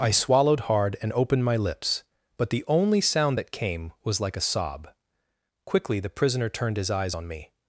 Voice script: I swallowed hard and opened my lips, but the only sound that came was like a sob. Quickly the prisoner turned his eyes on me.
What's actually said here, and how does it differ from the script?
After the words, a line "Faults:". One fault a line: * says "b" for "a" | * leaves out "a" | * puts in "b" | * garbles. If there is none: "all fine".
I swallowed hard and opened my lips, but the only sound that came was like a sob. Quickly the prisoner turned his eyes on me.
Faults:
all fine